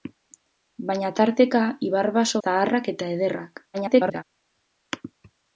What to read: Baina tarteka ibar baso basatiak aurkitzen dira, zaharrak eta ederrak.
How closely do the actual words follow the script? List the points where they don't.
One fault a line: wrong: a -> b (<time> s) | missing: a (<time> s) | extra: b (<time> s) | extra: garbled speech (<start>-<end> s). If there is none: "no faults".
missing: basatiak aurkitzen dira (2.4 s)
extra: garbled speech (3.7-4.2 s)